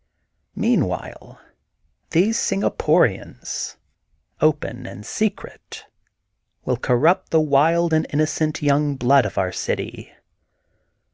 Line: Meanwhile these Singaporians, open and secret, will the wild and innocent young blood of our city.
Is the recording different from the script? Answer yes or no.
yes